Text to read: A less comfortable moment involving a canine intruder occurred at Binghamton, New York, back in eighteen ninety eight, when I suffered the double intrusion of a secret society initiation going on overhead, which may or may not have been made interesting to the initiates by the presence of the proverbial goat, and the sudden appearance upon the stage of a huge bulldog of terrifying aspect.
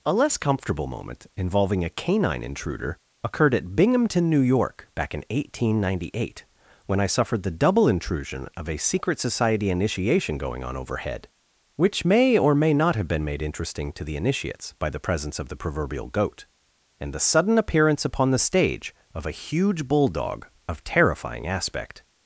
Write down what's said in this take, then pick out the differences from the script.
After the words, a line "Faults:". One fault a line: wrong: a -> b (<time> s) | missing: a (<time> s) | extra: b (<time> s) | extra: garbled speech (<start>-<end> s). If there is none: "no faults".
A less comfortable moment involving a canine intruder occurred at Binghamton, New York, back in eighteen ninety eight, when I suffered the double intrusion of a secret society initiation going on overhead, which may or may not have been made interesting to the initiates by the presence of the proverbial goat, and the sudden appearance upon the stage of a huge bulldog of terrifying aspect.
Faults:
no faults